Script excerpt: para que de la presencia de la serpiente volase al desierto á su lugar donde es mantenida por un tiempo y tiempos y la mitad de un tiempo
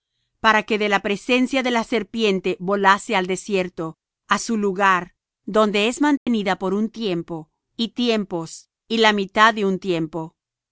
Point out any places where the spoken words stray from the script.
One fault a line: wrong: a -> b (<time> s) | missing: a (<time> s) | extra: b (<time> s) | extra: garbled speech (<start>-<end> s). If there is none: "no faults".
no faults